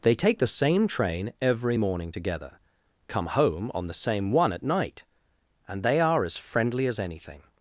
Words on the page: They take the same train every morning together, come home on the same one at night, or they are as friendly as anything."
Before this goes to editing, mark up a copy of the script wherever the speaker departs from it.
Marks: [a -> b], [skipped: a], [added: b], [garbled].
They take the same train every morning together, come home on the same one at night, [or -> and] they are as friendly as anything."